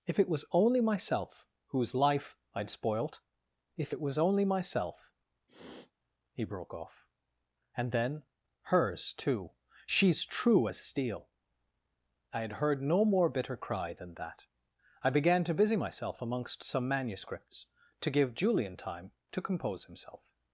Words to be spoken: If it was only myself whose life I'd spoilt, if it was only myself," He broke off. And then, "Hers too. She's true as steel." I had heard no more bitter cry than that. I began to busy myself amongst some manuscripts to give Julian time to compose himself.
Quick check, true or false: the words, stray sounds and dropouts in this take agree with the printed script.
false